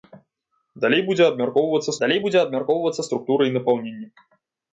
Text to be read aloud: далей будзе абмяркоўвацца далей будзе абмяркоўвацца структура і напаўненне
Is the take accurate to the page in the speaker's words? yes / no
yes